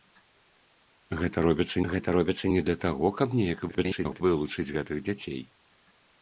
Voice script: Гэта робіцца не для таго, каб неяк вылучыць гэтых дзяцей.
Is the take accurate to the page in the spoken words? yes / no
no